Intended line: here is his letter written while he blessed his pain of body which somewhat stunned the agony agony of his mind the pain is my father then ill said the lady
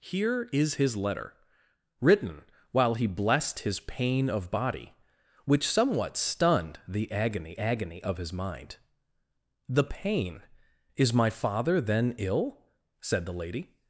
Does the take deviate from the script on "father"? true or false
false